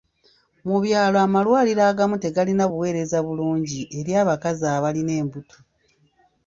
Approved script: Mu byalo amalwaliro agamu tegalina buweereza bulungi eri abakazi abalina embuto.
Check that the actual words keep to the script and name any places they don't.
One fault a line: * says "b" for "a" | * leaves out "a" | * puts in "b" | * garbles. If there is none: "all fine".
all fine